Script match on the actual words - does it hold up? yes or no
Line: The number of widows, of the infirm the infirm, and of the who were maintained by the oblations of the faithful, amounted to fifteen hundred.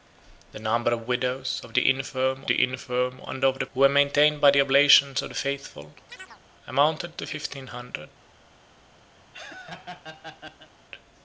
yes